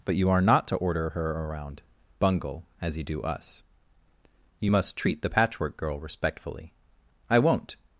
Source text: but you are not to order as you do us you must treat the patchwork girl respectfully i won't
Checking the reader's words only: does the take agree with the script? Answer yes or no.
no